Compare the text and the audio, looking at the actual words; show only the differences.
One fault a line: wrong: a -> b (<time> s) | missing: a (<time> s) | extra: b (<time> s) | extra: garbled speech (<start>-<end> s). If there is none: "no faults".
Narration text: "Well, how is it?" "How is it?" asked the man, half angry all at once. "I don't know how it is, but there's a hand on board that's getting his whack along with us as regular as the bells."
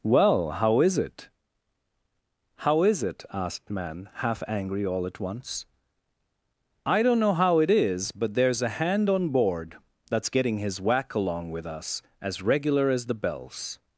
missing: the (3.7 s)